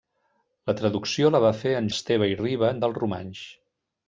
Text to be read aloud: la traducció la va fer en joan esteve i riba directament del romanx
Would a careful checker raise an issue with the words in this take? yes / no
yes